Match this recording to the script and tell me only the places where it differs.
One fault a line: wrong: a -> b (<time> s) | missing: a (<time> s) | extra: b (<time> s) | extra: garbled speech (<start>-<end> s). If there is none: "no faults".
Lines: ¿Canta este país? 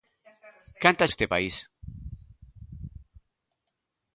no faults